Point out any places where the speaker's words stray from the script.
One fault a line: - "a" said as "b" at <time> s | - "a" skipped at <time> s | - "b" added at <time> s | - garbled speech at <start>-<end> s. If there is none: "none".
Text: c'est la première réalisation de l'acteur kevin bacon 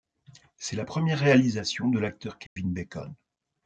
none